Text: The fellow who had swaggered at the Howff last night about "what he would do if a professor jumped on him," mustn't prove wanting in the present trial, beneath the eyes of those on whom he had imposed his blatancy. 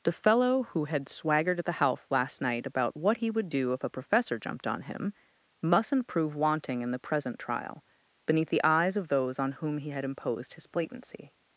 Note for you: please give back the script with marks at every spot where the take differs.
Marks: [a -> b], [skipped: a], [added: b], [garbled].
The fellow who had swaggered at the Howff last night about "what he would do if a professor jumped on him," mustn't prove wanting in the present trial, beneath the eyes of those on whom he had imposed his blatancy.